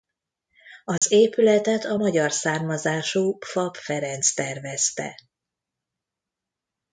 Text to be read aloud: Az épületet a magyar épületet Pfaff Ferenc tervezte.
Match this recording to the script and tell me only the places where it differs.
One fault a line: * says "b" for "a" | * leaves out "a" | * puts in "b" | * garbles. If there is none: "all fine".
* says "származású" for "épületet"